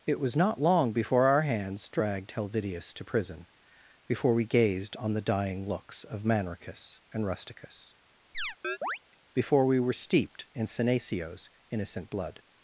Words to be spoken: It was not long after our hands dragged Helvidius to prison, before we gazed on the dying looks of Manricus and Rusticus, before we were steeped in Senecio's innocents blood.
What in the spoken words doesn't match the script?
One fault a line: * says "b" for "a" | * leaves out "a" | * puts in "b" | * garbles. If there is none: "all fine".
* says "before" for "after"
* says "innocent" for "innocents"